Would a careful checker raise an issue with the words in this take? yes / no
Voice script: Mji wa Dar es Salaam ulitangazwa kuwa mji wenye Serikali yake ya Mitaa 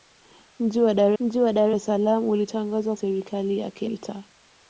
yes